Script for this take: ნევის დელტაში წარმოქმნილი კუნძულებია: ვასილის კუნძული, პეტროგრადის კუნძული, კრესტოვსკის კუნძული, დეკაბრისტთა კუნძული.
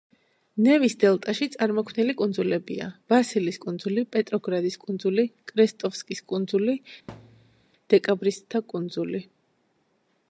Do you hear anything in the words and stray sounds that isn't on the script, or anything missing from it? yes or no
yes